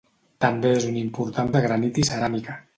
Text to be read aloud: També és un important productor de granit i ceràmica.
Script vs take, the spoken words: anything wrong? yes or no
yes